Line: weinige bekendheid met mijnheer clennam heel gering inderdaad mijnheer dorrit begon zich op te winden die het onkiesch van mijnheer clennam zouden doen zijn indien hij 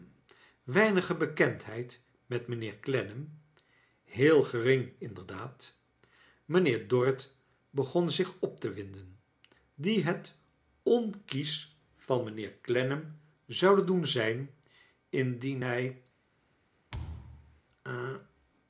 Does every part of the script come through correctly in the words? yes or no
yes